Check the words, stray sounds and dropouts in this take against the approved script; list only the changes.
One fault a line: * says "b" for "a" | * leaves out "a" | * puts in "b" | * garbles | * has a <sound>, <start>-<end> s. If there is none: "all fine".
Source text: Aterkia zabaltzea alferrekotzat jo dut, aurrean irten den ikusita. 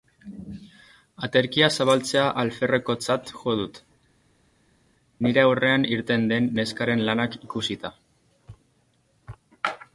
* puts in "nire"
* puts in "neskaren lanak"